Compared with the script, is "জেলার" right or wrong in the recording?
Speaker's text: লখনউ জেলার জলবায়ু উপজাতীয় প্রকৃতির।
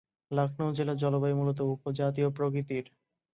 right